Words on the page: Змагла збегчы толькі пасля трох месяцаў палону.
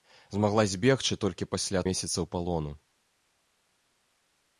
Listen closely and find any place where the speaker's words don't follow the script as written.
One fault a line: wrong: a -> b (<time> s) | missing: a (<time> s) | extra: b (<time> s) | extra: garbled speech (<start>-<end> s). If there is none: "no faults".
missing: трох (1.8 s)